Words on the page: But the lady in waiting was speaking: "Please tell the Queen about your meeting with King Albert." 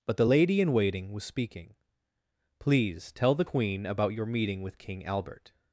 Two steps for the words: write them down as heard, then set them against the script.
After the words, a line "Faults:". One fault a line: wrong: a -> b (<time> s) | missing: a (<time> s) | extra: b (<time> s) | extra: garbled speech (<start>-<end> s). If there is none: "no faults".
But the lady in waiting was speaking: "Please tell the Queen about your meeting with King Albert."
Faults:
no faults